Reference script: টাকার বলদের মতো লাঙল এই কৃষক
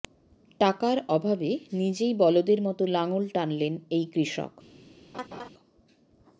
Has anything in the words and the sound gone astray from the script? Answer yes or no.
yes